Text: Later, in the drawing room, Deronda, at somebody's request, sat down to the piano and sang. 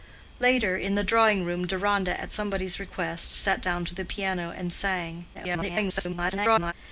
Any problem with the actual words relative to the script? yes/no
yes